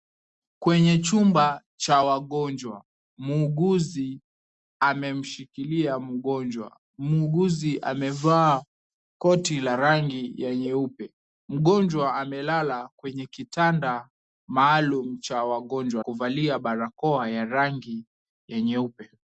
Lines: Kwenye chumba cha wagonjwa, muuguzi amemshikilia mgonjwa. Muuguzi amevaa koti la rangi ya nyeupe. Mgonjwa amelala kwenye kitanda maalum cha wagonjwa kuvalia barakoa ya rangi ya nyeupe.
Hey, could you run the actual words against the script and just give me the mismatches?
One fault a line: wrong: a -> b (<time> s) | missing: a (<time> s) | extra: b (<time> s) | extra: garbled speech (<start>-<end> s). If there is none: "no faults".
no faults